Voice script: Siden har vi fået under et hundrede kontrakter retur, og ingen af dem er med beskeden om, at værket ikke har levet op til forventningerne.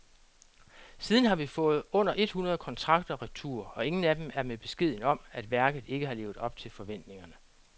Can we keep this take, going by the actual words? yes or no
yes